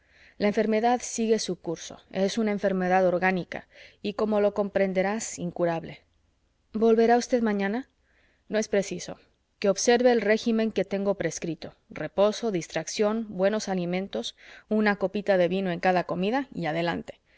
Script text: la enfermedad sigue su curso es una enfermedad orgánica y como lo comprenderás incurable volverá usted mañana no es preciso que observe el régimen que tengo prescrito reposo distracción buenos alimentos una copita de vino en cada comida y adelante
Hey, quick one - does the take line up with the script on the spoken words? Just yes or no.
yes